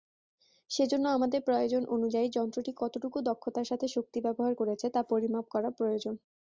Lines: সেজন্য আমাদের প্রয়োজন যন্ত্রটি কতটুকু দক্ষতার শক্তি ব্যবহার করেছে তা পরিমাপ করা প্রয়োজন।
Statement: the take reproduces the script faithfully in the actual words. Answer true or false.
false